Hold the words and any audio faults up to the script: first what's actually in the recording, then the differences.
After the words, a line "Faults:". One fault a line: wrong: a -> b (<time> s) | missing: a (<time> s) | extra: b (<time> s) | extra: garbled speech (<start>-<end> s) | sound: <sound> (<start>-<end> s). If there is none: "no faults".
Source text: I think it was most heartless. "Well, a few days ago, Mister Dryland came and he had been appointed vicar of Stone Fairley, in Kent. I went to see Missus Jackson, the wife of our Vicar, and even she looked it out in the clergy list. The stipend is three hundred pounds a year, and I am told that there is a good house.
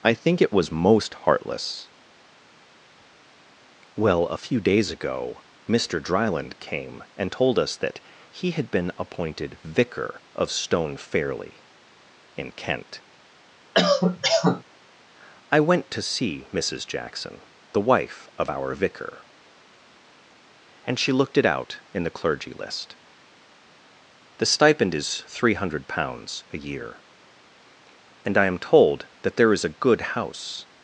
I think it was most heartless. "Well, a few days ago, Mister Dryland came and told us that he had been appointed vicar of Stone Fairley, in Kent. I went to see Missus Jackson, the wife of our Vicar, and she looked it out in the clergy list. The stipend is three hundred pounds a year, and I am told that there is a good house.
Faults:
extra: told us that (7.3 s)
sound: cough (13.7-14.6 s)
missing: even (21.0 s)